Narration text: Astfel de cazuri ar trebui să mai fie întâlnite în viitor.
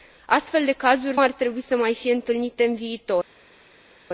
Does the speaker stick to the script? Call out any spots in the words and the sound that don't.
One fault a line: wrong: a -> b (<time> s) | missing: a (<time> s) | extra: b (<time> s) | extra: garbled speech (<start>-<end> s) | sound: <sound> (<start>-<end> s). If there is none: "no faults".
no faults